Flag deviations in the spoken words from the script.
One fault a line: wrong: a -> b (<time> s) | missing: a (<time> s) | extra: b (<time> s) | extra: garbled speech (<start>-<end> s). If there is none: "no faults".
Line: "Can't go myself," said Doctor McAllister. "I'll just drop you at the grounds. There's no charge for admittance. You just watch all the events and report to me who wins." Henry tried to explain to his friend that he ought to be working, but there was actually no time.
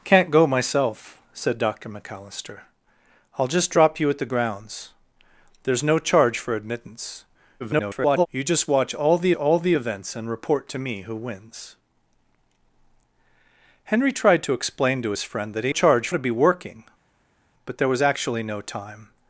extra: garbled speech (7.6-8.3 s)
extra: all the (9.3 s)
wrong: ought -> charge (15.7 s)